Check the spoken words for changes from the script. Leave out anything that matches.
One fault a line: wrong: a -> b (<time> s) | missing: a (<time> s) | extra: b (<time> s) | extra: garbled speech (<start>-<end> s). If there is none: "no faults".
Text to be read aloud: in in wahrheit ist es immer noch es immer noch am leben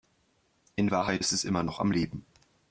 missing: in (0.9 s)
missing: es immer noch (1.8 s)